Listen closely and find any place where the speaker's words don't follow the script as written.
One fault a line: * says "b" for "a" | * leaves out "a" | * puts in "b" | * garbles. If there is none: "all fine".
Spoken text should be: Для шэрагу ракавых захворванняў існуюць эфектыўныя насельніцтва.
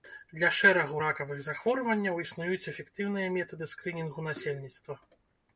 * puts in "метады скрынінгу"